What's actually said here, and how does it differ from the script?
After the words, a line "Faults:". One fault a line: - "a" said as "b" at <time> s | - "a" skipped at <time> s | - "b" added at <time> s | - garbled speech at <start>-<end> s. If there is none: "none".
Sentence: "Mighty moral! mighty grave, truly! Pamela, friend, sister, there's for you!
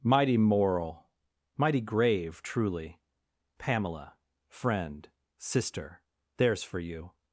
"Mighty moral! mighty grave, truly! Pamela, friend, sister, there's for you!
Faults:
none